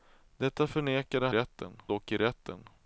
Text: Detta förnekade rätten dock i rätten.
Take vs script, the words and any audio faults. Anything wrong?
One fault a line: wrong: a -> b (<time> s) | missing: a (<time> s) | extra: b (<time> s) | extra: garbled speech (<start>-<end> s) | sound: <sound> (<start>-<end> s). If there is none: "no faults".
no faults